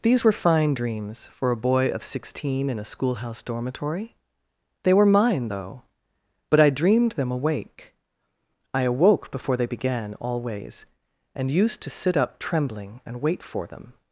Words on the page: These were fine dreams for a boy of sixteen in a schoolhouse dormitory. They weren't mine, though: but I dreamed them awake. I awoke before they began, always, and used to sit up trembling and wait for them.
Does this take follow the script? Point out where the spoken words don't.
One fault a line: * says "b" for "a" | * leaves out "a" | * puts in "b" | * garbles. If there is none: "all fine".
* says "were" for "weren't"